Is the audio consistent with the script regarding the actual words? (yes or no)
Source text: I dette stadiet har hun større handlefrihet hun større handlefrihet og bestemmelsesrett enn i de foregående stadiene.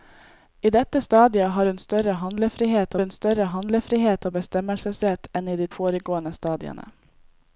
yes